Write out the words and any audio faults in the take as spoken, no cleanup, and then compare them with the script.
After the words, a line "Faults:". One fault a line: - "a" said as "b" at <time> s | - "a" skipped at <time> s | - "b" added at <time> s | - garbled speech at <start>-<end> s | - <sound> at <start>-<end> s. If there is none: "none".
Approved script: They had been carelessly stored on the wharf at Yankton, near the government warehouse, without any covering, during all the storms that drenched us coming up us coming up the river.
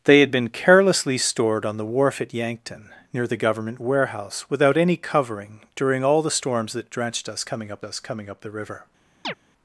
They had been carelessly stored on the wharf at Yankton, near the government warehouse, without any covering, during all the storms that drenched us coming up us coming up the river.
Faults:
- chirp at 9.2-9.3 s